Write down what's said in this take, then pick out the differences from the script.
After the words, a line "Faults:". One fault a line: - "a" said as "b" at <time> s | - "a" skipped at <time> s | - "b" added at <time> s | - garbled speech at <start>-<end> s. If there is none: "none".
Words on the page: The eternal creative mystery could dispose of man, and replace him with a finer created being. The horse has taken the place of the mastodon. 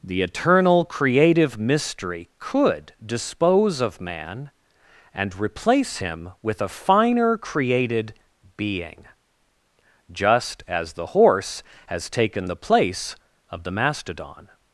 The eternal creative mystery could dispose of man, and replace him with a finer created being. Just as the horse has taken the place of the mastodon.
Faults:
- "Just as" added at 10.1 s